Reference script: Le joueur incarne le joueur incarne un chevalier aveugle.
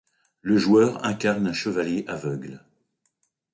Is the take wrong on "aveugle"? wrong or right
right